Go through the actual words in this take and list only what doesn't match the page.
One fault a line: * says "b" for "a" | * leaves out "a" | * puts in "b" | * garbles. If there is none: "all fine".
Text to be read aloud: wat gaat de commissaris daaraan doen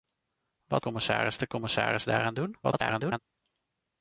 * says "commissaris" for "gaat"
* garbles